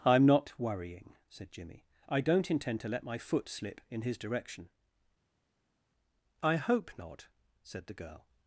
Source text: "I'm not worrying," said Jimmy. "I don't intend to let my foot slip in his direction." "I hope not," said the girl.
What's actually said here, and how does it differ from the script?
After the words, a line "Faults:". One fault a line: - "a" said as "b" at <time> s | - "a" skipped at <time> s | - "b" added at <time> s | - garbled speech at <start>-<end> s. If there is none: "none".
"I'm not worrying," said Jimmy. "I don't intend to let my foot slip in his direction." "I hope not," said the girl.
Faults:
none